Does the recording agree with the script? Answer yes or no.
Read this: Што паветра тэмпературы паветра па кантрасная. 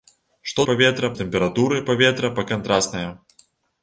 yes